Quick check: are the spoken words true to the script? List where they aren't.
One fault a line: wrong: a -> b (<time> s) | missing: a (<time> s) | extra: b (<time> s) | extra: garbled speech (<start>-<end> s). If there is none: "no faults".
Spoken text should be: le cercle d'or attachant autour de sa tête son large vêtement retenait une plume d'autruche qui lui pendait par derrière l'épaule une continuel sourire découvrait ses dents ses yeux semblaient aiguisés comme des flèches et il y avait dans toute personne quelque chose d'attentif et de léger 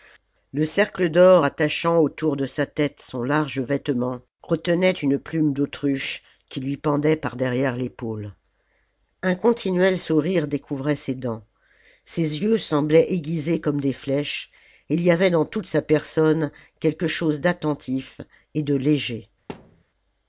wrong: une -> un (9.2 s)
extra: sa (15.7 s)